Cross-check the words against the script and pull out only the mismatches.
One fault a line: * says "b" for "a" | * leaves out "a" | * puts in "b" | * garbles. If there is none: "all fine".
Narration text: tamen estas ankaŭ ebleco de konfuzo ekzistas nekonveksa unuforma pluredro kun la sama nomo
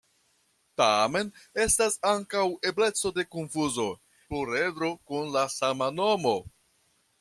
* leaves out "ekzistas nekonveksa unuforma"